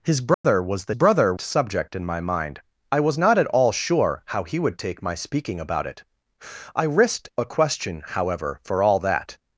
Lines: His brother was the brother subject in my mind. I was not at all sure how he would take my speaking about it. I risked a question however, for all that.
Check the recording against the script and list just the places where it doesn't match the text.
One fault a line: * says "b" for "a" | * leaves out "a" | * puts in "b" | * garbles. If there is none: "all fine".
all fine